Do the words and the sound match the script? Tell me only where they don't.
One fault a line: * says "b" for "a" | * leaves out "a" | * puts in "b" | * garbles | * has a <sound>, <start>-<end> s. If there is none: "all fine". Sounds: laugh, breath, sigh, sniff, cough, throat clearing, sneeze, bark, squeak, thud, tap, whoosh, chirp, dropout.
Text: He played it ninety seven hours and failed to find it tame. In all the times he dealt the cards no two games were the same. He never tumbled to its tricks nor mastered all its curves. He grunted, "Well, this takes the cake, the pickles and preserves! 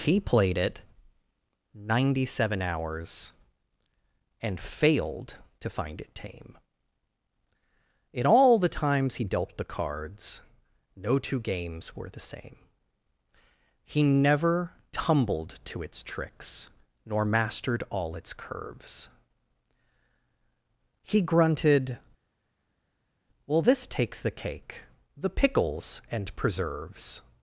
all fine